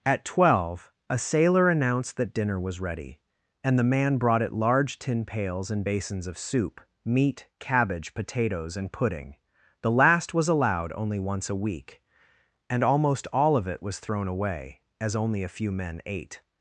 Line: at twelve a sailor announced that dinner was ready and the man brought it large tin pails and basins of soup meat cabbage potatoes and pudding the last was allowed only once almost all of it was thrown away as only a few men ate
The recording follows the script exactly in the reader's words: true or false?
false